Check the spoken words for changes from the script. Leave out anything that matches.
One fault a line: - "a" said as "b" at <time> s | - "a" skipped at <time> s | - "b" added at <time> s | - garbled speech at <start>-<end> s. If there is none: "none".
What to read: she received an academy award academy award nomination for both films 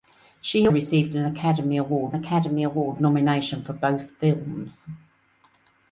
none